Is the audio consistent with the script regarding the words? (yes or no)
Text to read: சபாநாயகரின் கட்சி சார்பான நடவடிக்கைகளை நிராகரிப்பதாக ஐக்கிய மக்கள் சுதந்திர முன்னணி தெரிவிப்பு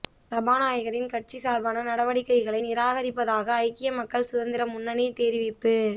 yes